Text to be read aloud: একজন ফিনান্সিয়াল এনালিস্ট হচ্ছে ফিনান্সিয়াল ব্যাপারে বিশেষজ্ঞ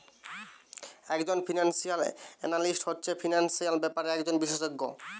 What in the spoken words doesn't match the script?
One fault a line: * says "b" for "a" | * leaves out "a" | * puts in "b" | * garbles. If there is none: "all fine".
* puts in "একজন"